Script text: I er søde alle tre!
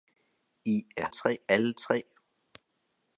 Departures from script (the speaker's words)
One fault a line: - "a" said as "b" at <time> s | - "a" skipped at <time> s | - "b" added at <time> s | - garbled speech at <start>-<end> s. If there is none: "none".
- "søde" said as "tre" at 1.1 s